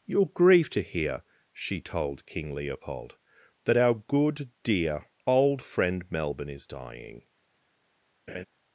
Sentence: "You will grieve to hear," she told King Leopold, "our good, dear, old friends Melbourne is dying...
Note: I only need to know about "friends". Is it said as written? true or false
false